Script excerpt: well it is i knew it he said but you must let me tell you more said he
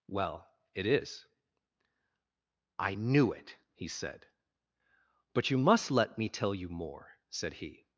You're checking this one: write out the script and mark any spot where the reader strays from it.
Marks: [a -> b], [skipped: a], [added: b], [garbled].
well it is i knew it he said but you must let me tell you more said he